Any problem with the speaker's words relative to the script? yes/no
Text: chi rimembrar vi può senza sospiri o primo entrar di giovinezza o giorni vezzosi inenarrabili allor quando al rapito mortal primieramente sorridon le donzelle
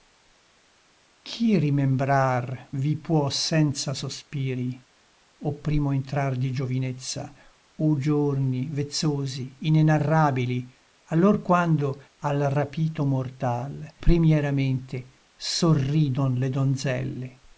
no